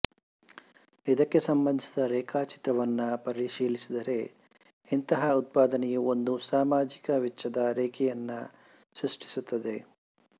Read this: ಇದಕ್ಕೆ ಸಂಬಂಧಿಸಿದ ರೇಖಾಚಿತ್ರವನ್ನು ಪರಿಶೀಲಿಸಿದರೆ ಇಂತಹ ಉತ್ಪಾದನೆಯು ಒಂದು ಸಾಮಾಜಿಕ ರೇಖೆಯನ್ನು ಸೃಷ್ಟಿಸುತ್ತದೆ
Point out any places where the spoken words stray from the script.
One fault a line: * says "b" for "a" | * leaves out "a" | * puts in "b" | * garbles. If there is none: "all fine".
* puts in "ವೆಚ್ಚದ"